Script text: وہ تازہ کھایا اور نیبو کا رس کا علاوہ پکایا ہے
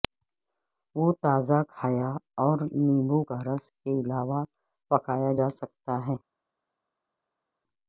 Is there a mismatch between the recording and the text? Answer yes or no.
yes